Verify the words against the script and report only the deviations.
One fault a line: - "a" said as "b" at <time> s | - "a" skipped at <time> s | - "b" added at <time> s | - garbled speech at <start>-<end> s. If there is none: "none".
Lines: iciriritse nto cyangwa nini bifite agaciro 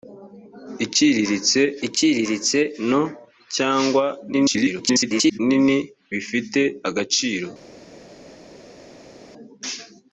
- "iciriritse" added at 1.9 s
- garbled speech at 4.3-5.4 s